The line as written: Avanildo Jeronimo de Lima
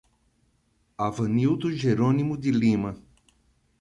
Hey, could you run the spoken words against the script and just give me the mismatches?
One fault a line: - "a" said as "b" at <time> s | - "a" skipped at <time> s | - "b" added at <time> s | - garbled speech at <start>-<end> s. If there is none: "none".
none